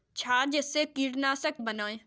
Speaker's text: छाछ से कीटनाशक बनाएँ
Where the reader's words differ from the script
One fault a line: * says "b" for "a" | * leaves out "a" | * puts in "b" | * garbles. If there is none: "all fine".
all fine